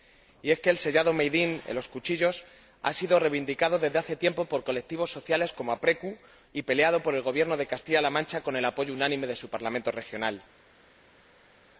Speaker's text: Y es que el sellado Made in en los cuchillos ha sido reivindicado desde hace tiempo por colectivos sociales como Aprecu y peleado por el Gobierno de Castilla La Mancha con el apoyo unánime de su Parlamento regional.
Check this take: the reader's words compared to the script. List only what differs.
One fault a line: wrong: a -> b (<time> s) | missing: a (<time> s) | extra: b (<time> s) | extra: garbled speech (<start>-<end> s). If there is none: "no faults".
no faults